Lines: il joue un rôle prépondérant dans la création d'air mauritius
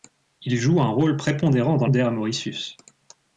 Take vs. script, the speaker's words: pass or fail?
fail